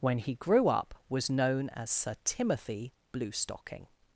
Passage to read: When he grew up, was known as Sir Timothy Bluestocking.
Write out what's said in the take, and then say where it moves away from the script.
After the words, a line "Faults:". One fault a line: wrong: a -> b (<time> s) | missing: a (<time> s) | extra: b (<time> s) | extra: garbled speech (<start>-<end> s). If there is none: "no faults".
When he grew up, was known as Sir Timothy Bluestocking.
Faults:
no faults